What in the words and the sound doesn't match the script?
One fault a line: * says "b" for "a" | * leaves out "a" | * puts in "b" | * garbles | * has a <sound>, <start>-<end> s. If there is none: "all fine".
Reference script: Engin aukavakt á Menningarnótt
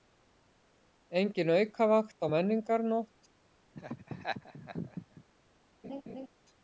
* has a laugh, 3.7-5.2 s
* has a laugh, 5.8-6.3 s